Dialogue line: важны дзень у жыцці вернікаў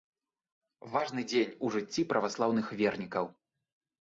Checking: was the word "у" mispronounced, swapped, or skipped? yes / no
no